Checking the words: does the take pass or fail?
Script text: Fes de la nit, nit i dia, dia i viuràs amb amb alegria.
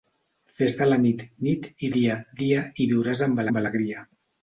pass